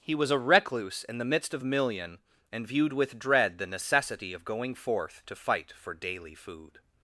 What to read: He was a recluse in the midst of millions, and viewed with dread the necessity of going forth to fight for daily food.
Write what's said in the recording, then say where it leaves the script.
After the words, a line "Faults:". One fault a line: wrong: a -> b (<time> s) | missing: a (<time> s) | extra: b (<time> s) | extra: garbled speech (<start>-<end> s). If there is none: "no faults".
He was a recluse in the midst of million, and viewed with dread the necessity of going forth to fight for daily food.
Faults:
wrong: millions -> million (1.6 s)